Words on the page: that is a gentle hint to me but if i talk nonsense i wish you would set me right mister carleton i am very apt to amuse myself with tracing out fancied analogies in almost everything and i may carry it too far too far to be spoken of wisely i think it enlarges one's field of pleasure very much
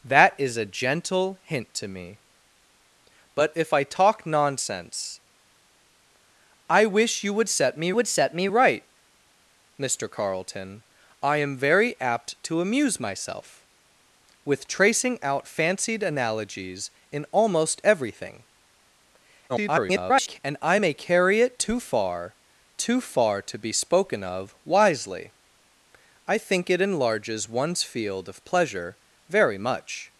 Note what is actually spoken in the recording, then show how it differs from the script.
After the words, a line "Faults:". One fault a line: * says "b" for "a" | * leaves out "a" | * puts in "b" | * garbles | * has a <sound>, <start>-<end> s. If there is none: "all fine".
that is a gentle hint to me but if i talk nonsense i wish you would set me would set me right mister carleton i am very apt to amuse myself with tracing out fancied analogies in almost everything [garbled] and i may carry it too far too far to be spoken of wisely i think it enlarges one's field of pleasure very much
Faults:
* puts in "would set me"
* garbles